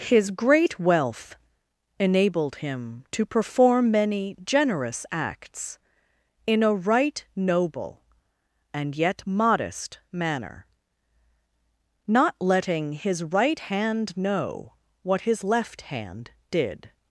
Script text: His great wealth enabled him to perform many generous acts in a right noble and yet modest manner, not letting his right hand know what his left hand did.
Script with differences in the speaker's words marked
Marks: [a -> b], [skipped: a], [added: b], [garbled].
His great wealth enabled him to perform many generous acts in a right noble and yet modest manner, not letting his right hand know what his left hand did.